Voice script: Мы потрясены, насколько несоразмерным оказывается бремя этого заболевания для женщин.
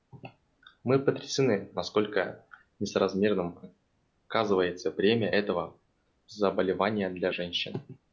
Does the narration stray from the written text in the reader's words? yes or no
no